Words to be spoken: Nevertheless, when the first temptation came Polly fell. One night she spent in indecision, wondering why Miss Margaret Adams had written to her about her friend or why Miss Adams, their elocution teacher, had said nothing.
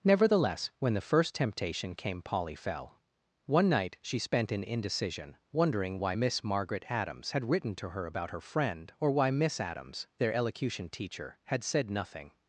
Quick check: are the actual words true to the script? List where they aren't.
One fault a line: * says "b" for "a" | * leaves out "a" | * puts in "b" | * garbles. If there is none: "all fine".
all fine